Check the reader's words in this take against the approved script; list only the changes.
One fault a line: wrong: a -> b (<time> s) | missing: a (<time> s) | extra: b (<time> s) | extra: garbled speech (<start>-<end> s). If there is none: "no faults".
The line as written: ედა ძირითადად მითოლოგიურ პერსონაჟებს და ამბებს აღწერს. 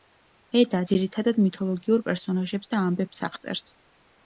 no faults